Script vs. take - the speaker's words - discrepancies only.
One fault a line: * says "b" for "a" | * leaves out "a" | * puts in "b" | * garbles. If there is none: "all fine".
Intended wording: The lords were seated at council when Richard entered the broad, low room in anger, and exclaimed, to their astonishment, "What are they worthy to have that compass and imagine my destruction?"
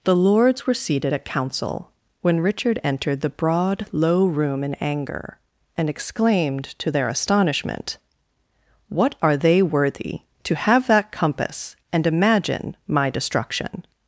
all fine